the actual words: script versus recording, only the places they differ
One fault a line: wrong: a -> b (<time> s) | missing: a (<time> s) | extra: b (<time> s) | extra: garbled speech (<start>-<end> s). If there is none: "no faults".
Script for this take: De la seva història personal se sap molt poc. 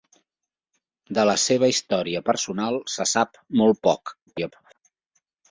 extra: garbled speech (4.3-4.8 s)